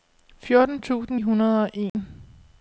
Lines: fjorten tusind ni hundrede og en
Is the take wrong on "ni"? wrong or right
wrong